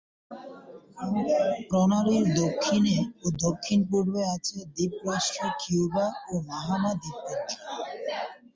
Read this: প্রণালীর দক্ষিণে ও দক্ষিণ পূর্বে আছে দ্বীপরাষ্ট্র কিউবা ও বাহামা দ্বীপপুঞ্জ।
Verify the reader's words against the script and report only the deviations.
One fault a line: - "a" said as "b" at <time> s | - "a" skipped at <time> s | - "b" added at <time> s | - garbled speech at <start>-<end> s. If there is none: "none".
none